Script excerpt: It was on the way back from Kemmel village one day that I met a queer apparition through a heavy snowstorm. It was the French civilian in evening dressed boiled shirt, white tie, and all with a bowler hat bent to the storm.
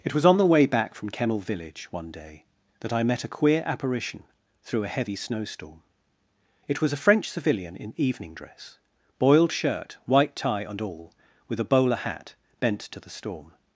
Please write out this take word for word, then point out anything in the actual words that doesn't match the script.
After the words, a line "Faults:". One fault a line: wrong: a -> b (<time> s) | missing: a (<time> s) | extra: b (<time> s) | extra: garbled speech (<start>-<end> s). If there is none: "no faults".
It was on the way back from Kemmel village one day that I met a queer apparition through a heavy snowstorm. It was a French civilian in evening dress boiled shirt, white tie, and all with a bowler hat bent to the storm.
Faults:
wrong: the -> a (6.9 s)
wrong: dressed -> dress (8.3 s)